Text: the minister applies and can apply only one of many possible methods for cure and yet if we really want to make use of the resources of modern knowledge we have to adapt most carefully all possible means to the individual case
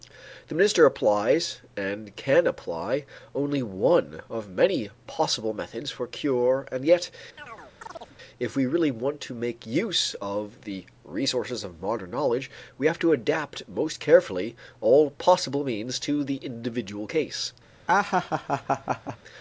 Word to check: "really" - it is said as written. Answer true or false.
true